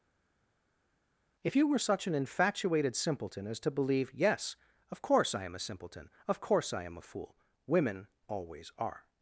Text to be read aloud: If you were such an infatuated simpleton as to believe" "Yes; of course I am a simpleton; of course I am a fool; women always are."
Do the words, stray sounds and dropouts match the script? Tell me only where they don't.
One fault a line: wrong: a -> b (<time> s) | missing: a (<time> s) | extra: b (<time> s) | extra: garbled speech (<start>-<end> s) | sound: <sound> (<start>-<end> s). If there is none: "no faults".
no faults